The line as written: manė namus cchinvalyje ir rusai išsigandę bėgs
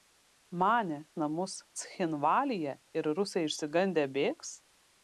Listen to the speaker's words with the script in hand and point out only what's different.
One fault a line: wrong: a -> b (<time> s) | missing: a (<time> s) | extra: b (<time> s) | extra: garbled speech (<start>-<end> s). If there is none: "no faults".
no faults